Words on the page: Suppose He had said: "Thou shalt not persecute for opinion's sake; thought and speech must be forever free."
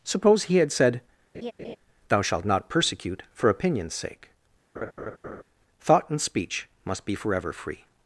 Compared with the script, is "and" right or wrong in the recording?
right